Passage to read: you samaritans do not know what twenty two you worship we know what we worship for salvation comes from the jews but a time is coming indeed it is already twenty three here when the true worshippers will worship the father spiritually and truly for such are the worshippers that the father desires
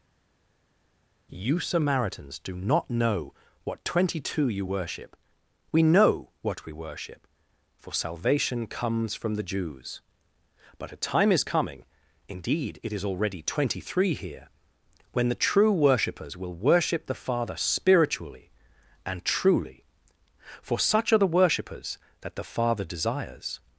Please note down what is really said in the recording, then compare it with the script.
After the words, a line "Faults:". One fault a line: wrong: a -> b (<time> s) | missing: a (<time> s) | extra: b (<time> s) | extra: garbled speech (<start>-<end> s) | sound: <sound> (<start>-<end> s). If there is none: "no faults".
you samaritans do not know what twenty two you worship we know what we worship for salvation comes from the jews but a time is coming indeed it is already twenty three here when the true worshippers will worship the father spiritually and truly for such are the worshippers that the father desires
Faults:
no faults